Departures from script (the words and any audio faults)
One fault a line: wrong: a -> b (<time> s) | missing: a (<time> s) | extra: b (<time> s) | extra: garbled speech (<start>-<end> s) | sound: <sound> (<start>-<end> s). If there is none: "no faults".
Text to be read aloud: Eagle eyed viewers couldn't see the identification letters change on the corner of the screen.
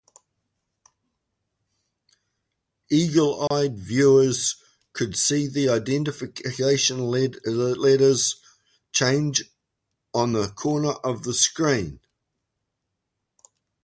sound: dropout (3.5-3.5 s)
wrong: couldn't -> could (4.9 s)